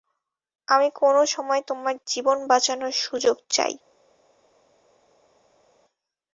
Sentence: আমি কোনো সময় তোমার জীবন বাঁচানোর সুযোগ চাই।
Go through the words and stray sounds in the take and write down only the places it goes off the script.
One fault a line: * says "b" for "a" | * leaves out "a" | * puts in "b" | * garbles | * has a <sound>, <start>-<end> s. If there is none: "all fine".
all fine